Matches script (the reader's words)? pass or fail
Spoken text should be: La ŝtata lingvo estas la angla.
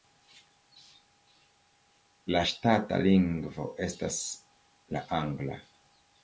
pass